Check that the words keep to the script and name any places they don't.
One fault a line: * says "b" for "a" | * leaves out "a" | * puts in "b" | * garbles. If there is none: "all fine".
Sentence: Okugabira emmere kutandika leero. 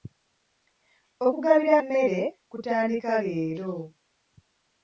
all fine